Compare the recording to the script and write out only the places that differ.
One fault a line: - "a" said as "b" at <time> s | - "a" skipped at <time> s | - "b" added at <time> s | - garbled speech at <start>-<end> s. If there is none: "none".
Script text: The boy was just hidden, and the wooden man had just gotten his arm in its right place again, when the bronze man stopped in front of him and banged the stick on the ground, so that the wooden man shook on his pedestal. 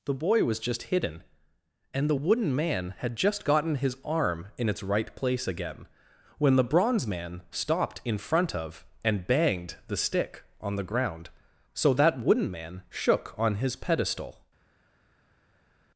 - "him" skipped at 8.9 s
- "the" skipped at 12.2 s